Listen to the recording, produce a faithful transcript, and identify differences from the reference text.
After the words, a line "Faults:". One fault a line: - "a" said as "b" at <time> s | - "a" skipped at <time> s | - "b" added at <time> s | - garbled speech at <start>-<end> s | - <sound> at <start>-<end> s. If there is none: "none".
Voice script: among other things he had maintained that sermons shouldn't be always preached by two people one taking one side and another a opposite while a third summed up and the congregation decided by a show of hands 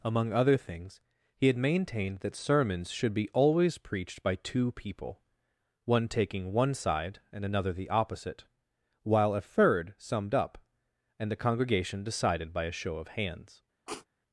among other things he had maintained that sermons should be always preached by two people one taking one side and another the opposite while a third summed up and the congregation decided by a show of hands
Faults:
- "shouldn't" said as "should" at 2.9 s
- "a" said as "the" at 7.7 s
- sniff at 13.9-14.1 s